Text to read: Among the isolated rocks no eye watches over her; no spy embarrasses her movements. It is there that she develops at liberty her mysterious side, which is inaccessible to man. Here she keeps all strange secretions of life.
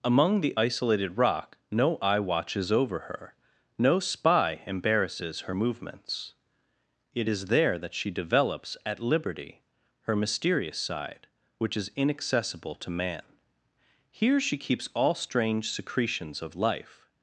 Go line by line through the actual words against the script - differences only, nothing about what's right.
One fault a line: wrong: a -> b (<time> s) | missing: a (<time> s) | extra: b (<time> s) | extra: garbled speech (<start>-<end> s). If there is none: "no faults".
wrong: rocks -> rock (1.2 s)